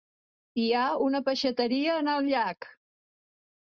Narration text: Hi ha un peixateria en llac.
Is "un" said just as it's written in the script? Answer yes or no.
no